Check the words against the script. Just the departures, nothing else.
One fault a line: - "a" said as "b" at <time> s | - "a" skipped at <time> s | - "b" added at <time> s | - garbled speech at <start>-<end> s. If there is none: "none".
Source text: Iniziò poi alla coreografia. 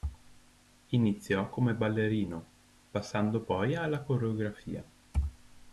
- "come ballerino passando" added at 1.5 s